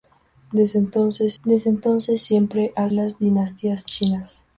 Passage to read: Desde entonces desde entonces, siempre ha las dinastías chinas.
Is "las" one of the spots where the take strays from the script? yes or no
no